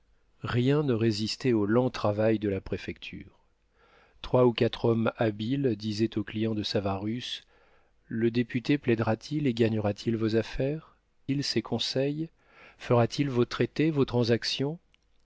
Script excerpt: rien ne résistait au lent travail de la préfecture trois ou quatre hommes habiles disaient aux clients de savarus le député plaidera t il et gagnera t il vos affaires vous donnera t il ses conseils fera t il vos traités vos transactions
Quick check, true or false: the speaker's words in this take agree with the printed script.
false